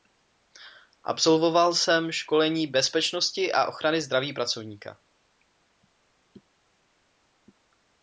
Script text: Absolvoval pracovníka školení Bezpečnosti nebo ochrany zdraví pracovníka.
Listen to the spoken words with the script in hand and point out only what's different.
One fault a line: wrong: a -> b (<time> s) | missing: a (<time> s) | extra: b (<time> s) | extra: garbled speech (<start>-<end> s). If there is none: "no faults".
wrong: pracovníka -> jsem (1.7 s)
wrong: nebo -> a (3.5 s)